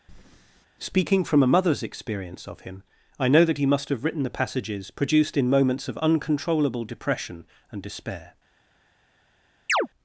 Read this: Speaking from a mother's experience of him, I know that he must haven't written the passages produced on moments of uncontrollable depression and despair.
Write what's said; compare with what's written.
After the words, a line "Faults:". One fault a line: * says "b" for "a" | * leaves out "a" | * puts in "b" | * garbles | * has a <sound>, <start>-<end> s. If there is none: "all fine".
Speaking from a mother's experience of him, I know that he must have written the passages produced in moments of uncontrollable depression and despair.
Faults:
* has a breath, 0.1-0.7 s
* says "have" for "haven't"
* says "in" for "on"
* has a chirp, 9.7-9.9 s